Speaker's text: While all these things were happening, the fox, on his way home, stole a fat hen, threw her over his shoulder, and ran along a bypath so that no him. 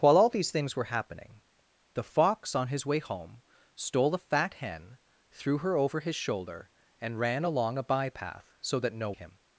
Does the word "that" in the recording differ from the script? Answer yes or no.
no